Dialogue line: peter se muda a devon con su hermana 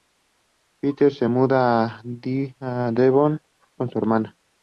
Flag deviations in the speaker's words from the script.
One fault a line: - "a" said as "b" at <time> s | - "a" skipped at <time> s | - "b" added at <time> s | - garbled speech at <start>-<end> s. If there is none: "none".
none